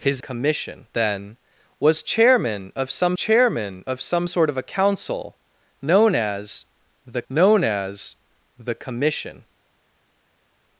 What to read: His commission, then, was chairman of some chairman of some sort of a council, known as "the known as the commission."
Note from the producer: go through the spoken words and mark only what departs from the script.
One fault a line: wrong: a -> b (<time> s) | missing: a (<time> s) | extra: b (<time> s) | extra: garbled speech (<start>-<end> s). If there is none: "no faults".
no faults